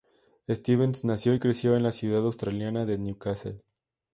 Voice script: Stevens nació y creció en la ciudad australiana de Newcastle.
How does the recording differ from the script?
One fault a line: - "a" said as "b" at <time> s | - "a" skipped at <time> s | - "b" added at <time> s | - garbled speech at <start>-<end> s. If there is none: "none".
none